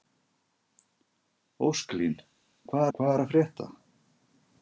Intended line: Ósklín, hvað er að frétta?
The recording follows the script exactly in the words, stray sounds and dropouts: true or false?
false